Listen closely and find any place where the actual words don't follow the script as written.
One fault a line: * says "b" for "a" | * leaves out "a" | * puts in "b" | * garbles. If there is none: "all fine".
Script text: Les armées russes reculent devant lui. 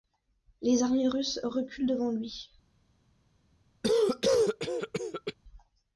all fine